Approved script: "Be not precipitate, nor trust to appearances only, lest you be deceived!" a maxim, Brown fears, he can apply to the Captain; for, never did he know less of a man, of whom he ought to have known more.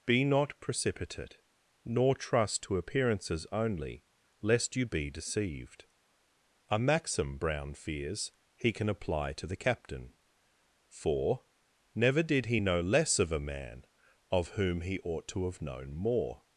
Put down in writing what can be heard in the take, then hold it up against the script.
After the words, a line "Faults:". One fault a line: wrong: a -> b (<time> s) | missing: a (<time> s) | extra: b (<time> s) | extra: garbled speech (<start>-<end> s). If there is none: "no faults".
"Be not precipitate, nor trust to appearances only, lest you be deceived!" a maxim, Brown fears, he can apply to the Captain; for, never did he know less of a man, of whom he ought to have known more.
Faults:
no faults